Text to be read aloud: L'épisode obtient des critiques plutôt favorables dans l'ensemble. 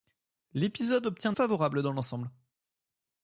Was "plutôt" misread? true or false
true